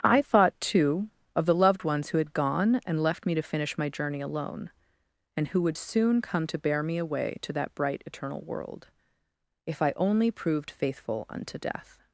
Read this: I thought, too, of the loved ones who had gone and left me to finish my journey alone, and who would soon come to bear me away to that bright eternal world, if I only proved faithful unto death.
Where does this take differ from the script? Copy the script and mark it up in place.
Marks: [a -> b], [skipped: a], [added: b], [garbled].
I thought, too, of the loved ones who had gone and left me to finish my journey alone, and who would soon come to bear me away to that bright eternal world, if I only proved faithful unto death.